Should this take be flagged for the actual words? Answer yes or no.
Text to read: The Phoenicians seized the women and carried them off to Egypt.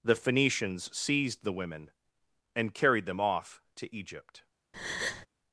no